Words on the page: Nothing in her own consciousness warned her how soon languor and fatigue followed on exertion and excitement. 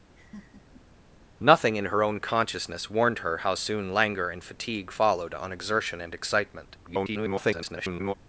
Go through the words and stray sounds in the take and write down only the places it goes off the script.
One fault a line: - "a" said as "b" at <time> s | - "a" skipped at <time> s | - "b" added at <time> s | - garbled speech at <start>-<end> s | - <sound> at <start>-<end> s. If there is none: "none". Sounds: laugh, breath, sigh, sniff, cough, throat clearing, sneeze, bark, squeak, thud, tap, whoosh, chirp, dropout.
- laugh at 0.2-0.8 s
- garbled speech at 6.8-8.1 s